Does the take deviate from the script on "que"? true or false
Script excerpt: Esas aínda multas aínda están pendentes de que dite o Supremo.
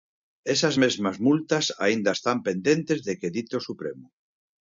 false